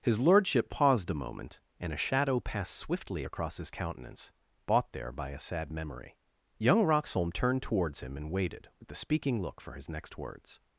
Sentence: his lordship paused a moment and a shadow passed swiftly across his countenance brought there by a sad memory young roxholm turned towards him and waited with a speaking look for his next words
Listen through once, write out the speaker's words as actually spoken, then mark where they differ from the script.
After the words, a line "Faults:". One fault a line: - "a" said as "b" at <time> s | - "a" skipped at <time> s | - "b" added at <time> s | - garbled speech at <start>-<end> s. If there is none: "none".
his lordship paused a moment and a shadow passed swiftly across his countenance bought there by a sad memory young roxholm turned towards him and waited with the speaking look for his next words
Faults:
- "brought" said as "bought" at 4.7 s
- "a" said as "the" at 8.9 s